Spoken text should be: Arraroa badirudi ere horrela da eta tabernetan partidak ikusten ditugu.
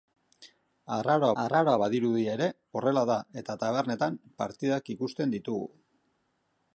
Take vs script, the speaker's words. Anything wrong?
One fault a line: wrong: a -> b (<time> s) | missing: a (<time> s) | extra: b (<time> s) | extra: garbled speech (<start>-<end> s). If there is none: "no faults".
extra: arraroa (1.4 s)